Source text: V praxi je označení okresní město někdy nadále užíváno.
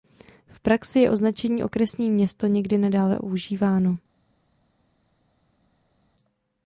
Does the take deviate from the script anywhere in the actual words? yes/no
no